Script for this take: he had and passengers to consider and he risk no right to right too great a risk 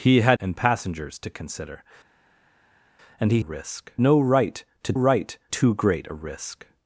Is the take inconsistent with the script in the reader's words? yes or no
no